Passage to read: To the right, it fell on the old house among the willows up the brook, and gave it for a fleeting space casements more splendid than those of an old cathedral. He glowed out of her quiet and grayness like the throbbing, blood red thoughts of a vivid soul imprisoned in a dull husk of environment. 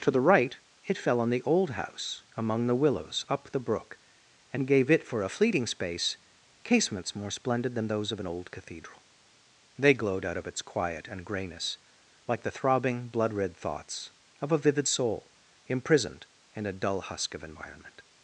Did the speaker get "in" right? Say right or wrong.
right